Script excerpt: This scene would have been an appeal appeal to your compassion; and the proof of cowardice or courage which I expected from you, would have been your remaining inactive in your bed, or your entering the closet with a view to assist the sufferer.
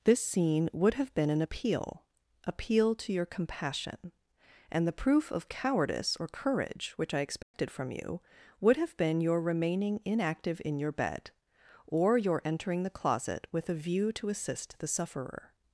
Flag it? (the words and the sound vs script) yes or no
yes